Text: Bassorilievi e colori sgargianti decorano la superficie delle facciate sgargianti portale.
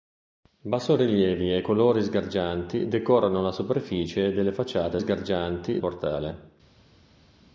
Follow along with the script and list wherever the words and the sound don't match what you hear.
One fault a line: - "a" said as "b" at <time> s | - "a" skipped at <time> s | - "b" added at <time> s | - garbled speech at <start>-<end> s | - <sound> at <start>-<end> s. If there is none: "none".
none